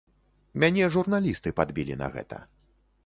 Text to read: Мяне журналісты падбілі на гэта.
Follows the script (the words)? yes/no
yes